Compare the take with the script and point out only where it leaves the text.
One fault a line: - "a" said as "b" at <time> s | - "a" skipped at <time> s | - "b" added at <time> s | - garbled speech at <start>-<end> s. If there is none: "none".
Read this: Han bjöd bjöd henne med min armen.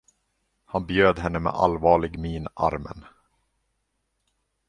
- "bjöd" skipped at 1.2 s
- "allvarlig" added at 1.5 s